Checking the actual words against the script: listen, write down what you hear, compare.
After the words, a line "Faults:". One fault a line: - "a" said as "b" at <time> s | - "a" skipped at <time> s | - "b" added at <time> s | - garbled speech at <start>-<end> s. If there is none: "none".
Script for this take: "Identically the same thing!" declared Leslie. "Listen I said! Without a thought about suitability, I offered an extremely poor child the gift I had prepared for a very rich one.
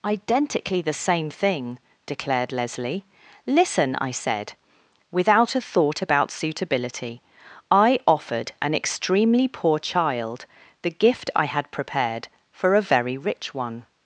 "Identically the same thing!" declared Leslie. "Listen I said! Without a thought about suitability, I offered an extremely poor child the gift I had prepared for a very rich one.
Faults:
none